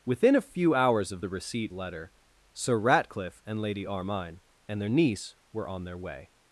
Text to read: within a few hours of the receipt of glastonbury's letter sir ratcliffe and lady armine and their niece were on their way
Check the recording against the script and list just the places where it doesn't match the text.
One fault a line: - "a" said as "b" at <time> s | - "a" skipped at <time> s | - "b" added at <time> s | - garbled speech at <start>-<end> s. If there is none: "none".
- "of glastonbury's" skipped at 1.7 s